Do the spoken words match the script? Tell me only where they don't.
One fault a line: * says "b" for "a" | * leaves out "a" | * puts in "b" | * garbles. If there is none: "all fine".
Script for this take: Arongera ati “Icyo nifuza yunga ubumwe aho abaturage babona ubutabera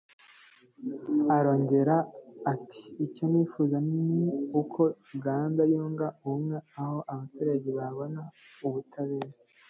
* puts in "ni uko Uganda"